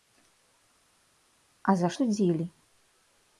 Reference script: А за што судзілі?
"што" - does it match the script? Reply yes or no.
no